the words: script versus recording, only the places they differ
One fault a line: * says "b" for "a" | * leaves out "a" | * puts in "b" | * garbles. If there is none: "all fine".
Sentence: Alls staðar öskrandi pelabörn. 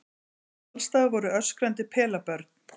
* puts in "voru"